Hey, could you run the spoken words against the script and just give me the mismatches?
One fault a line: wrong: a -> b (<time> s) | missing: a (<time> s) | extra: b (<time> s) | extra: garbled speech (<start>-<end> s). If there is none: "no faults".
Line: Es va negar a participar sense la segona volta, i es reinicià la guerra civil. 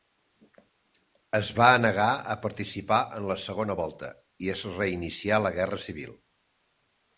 wrong: sense -> en (3.2 s)